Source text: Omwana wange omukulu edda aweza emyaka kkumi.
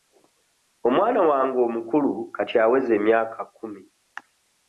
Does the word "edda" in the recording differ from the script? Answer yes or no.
yes